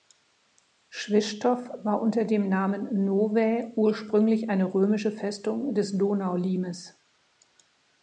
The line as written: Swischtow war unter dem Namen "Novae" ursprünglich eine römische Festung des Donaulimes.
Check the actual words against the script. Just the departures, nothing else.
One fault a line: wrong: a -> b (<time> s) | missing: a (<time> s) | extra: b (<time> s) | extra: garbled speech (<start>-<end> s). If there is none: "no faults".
no faults